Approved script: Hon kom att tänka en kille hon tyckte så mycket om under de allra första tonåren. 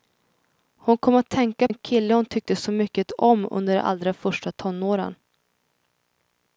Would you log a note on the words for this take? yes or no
no